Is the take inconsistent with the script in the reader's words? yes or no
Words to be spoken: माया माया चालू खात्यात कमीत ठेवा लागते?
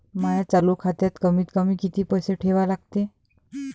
yes